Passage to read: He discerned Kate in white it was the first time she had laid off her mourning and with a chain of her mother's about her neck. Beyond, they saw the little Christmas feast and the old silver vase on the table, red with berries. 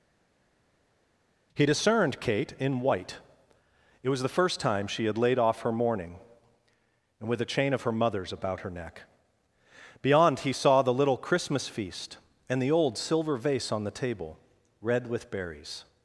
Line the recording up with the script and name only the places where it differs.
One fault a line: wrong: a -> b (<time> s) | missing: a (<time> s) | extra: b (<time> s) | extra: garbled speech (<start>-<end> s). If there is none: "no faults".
wrong: they -> he (10.4 s)